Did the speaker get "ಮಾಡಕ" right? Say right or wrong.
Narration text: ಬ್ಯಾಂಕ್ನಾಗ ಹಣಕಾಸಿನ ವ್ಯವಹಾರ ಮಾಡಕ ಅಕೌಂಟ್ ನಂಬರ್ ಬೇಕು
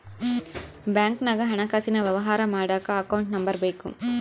right